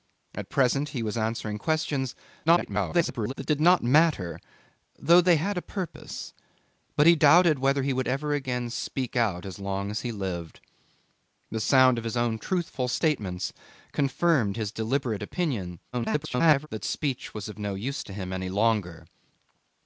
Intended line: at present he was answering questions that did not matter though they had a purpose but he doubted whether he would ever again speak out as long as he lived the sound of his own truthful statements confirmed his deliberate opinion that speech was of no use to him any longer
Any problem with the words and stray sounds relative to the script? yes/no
yes